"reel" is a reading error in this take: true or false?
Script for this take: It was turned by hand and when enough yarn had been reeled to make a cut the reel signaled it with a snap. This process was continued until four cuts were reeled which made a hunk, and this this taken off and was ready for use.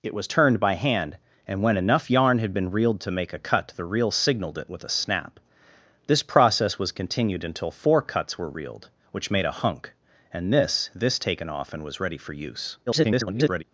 false